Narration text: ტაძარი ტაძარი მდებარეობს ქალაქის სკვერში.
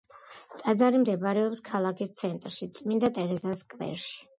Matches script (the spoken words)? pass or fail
fail